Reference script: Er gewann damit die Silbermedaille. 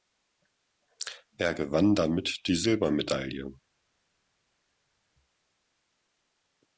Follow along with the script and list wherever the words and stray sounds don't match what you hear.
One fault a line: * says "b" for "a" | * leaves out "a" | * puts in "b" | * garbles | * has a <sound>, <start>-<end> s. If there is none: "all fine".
all fine